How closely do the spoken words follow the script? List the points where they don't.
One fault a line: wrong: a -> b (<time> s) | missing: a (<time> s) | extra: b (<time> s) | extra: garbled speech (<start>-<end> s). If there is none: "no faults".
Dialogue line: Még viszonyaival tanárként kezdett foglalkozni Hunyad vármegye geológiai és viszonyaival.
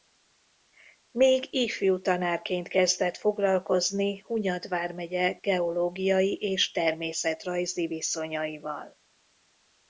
wrong: viszonyaival -> ifjú (1.5 s)
extra: természetrajzi (6.7 s)